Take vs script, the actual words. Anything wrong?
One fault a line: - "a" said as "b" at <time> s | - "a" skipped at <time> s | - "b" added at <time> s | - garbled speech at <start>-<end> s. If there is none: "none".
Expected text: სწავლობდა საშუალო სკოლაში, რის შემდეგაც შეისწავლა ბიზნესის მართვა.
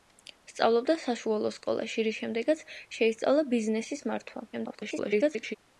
- garbled speech at 4.5-5.6 s